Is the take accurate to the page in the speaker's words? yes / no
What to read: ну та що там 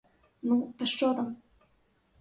yes